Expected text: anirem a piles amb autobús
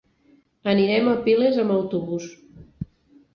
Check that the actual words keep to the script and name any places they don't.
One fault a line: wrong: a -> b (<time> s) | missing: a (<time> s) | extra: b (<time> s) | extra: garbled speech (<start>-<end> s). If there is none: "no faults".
no faults